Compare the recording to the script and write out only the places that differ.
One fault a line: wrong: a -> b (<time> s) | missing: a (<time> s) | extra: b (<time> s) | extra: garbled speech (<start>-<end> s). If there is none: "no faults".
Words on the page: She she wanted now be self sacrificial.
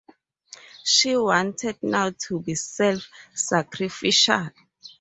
missing: she (1.1 s)
extra: to (2.3 s)